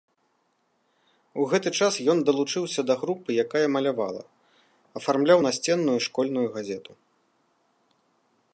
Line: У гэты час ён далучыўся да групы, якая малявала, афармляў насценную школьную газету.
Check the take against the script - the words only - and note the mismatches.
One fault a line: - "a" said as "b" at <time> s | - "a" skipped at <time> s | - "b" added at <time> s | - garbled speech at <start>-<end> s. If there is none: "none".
none